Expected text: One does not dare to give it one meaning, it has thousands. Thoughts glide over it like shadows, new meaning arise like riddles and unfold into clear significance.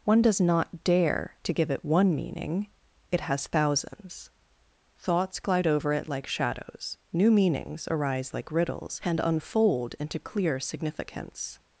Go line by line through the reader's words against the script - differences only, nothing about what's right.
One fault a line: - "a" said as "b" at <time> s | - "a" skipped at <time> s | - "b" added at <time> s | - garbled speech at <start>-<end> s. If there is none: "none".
- "meaning" said as "meanings" at 7.3 s